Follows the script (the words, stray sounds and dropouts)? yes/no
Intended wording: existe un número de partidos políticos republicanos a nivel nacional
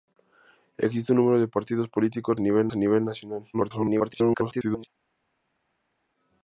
no